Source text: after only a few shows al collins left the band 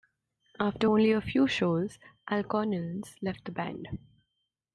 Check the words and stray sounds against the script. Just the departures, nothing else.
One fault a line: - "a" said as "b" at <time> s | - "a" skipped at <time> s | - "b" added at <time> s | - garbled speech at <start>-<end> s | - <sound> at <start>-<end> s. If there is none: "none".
none